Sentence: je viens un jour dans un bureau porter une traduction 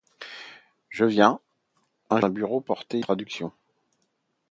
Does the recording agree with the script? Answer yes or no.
no